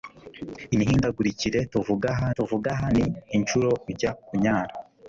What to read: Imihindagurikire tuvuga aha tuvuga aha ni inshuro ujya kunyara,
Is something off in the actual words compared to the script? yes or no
no